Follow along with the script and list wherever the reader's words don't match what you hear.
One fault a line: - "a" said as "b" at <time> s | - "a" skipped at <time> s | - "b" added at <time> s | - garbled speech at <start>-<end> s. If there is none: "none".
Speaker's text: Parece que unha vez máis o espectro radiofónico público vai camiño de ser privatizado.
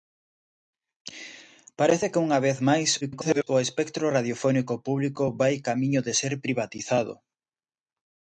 - garbled speech at 3.0-3.5 s